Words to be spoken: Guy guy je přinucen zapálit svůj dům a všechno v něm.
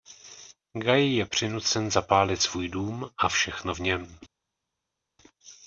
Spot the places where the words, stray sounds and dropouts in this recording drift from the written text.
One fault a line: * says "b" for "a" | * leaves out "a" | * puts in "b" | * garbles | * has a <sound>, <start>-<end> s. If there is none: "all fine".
* leaves out "guy"